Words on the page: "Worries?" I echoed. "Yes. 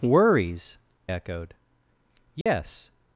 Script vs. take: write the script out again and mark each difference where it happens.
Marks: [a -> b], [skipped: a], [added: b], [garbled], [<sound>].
"Worries?" [skipped: I] echoed. "Yes. [dropout]